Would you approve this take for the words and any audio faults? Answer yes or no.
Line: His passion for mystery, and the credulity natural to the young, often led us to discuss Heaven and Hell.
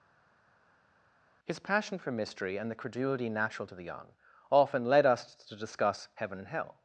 yes